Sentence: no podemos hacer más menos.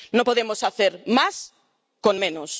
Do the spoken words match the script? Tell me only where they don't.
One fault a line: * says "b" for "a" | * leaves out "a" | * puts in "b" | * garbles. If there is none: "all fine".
* puts in "con"